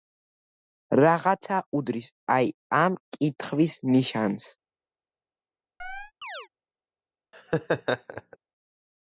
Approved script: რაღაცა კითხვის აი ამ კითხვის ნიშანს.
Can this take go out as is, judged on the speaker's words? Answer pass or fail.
fail